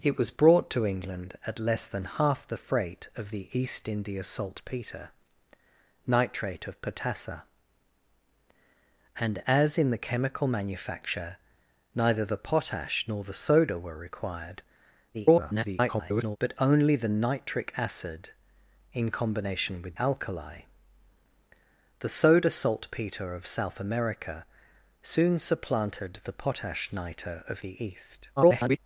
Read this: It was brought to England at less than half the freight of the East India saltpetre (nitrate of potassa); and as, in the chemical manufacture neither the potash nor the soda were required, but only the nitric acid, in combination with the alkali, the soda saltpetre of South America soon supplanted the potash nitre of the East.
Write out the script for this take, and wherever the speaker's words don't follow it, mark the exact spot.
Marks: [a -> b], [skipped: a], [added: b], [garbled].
It was brought to England at less than half the freight of the East India saltpetre (nitrate of potassa); and as, in the chemical manufacture neither the potash nor the soda were required, [garbled] but only the nitric acid, in combination with [skipped: the] alkali, the soda saltpetre of South America soon supplanted the potash nitre of the East. [garbled]